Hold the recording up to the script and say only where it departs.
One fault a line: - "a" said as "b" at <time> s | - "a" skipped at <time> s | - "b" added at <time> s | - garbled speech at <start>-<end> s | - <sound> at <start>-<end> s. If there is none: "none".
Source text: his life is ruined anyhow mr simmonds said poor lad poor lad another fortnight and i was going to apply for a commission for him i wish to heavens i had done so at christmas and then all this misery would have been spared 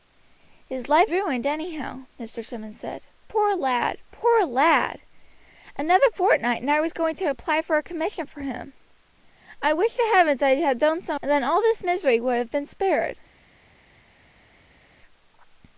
- "is" skipped at 1.1 s
- "at christmas" skipped at 11.2 s